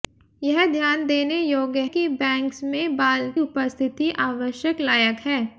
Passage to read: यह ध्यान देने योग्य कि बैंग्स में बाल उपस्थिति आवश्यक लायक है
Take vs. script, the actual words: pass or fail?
pass